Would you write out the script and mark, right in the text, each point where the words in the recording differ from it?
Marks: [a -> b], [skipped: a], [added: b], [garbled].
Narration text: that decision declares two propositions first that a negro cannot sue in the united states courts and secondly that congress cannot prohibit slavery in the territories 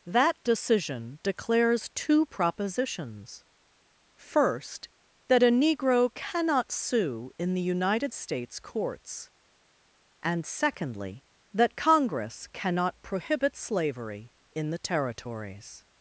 that decision declares two propositions first that a negro cannot sue in the united states courts and secondly that congress cannot prohibit slavery in the territories